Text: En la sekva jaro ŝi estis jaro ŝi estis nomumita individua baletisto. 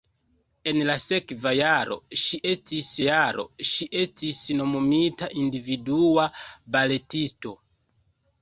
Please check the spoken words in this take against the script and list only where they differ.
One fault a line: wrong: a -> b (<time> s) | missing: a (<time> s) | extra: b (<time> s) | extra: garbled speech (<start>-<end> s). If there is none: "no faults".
no faults